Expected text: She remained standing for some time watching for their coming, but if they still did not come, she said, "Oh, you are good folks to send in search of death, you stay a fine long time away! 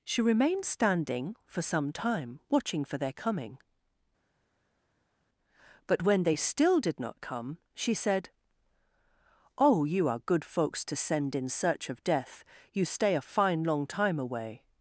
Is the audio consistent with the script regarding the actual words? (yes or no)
no